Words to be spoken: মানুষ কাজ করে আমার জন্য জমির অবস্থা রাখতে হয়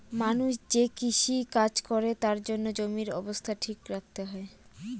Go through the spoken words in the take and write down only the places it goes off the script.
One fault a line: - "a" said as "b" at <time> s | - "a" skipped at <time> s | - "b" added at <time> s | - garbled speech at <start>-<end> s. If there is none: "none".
- "যে কৃষি" added at 0.7 s
- "আমার" said as "তার" at 2.2 s
- "ঠিক" added at 3.6 s